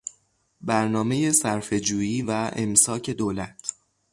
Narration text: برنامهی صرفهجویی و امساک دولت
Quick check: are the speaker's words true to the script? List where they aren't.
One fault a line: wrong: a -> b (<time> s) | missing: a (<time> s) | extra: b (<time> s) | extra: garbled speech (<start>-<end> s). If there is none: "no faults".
no faults